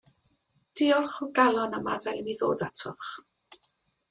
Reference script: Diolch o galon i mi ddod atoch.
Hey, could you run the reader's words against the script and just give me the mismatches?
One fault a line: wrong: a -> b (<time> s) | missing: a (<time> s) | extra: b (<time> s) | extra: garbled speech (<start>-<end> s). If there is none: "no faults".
extra: am adael (1.8 s)